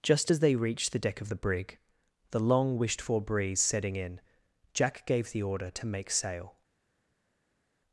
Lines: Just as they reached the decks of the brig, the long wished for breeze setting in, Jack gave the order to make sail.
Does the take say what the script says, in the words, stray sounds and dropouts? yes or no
no